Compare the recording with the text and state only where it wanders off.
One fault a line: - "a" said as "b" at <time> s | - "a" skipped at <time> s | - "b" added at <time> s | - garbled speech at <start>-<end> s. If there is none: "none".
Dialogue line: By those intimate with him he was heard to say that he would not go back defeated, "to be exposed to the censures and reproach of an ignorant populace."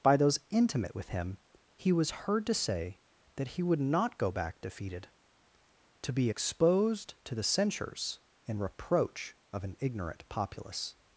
none